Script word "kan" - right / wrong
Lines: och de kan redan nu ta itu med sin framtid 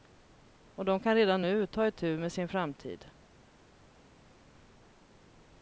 right